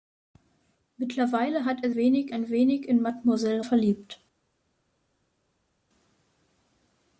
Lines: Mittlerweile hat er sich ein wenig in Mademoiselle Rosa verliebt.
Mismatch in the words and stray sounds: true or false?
true